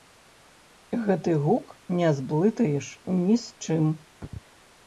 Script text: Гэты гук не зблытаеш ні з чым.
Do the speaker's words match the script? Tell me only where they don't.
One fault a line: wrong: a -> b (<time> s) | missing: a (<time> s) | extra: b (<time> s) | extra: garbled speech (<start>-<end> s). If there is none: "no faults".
no faults